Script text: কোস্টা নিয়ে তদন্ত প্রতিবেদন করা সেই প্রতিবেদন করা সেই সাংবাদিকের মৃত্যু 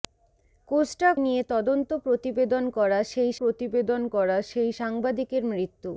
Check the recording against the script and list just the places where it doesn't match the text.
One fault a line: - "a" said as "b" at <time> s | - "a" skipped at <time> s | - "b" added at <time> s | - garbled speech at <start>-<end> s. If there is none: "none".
none